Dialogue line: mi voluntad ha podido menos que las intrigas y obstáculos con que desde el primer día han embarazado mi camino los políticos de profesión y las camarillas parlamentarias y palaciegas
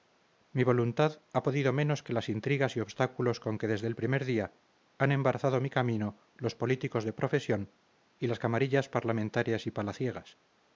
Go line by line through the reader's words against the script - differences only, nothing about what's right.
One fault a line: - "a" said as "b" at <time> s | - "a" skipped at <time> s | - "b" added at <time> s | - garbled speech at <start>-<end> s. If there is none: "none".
none